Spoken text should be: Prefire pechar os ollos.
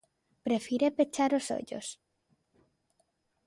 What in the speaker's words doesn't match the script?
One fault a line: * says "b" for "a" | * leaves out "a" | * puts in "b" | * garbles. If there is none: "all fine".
all fine